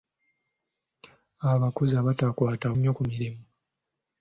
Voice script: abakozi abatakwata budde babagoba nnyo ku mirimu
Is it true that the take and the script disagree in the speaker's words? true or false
true